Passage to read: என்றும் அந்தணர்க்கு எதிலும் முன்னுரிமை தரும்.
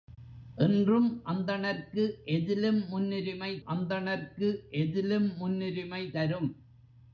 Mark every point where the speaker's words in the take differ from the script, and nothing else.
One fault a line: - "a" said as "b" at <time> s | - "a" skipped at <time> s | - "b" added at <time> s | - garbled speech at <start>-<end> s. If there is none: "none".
- "அந்தணர்க்கு எதிலும் முன்னுரிமை" added at 3.6 s